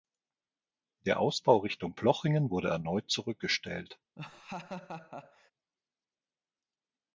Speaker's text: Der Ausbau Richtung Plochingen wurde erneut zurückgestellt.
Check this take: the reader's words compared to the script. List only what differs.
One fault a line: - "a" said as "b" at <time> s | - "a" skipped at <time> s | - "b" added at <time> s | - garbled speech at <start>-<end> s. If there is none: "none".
none